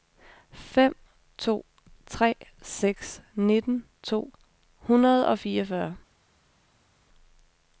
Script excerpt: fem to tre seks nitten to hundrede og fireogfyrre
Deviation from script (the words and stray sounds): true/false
false